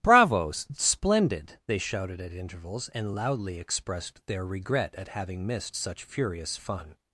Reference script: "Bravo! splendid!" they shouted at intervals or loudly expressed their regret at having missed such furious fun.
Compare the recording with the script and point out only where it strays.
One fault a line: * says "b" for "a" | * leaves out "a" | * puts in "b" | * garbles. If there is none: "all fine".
* says "and" for "or"